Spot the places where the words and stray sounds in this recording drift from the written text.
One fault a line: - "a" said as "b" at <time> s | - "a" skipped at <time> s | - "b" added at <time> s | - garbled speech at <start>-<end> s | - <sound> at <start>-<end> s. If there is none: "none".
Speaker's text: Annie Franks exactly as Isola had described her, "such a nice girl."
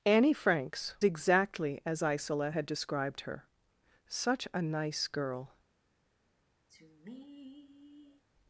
- sigh at 6.7-8.2 s